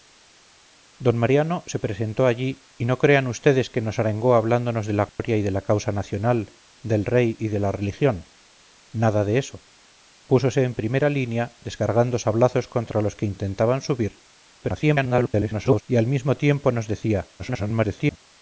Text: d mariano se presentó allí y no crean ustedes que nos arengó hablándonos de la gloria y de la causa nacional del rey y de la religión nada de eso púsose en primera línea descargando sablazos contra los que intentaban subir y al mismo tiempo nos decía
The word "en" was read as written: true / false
true